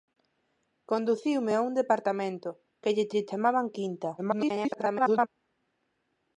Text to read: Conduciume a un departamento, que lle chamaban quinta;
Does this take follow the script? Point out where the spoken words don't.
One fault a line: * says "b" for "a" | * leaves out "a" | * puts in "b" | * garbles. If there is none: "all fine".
* puts in "lle"
* garbles